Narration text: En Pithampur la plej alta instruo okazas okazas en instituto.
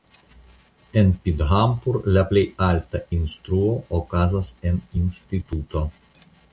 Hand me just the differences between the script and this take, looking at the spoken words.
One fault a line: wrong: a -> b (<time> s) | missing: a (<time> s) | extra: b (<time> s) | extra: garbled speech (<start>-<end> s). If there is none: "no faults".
missing: okazas (4.6 s)